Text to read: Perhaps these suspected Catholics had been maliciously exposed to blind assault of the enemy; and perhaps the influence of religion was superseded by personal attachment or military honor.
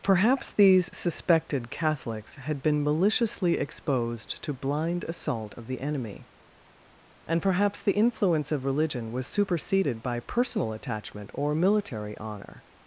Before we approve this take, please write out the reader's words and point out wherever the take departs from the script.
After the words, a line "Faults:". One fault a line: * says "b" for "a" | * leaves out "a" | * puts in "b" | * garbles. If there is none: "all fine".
Perhaps these suspected Catholics had been maliciously exposed to blind assault of the enemy; and perhaps the influence of religion was superseded by personal attachment or military honor.
Faults:
all fine